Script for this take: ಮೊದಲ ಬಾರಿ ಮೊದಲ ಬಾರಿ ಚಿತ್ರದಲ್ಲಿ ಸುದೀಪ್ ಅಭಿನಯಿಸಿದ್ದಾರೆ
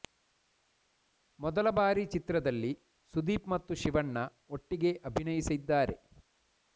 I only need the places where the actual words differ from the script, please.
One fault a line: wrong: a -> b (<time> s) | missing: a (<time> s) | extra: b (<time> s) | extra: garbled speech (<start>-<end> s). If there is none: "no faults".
wrong: ಮೊದಲ ಬಾರಿ ಚಿತ್ರದಲ್ಲಿ ಸುದೀಪ್ -> ಚಿತ್ರದಲ್ಲಿ ಸುದೀಪ್ ಮತ್ತು ಶಿವಣ್ಣ ಒಟ್ಟಿಗೆ (2.0 s)